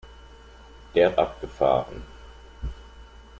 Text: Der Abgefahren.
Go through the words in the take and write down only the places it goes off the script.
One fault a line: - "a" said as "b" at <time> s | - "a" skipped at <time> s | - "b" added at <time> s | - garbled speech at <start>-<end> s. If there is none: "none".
none